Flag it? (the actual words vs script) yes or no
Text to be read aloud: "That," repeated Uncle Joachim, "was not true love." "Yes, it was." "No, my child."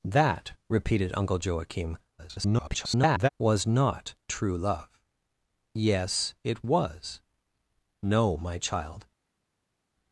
yes